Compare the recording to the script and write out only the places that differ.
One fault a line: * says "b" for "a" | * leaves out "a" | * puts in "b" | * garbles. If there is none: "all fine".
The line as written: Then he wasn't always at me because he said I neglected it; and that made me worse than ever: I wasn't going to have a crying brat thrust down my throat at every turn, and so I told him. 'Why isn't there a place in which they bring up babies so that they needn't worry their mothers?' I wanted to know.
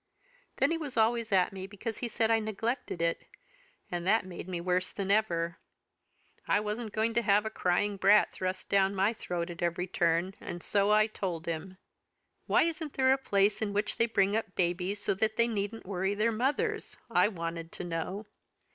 * says "was" for "wasn't"